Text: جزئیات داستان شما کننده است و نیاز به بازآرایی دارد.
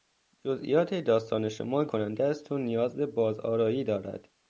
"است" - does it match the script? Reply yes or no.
yes